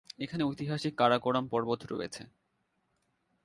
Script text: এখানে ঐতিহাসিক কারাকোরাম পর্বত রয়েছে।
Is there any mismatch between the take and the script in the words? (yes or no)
no